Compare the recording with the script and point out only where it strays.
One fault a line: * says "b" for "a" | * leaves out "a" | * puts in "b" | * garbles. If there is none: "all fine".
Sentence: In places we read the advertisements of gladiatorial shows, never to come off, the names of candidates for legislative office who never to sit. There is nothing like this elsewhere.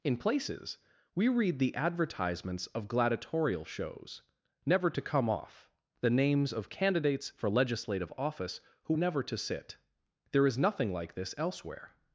all fine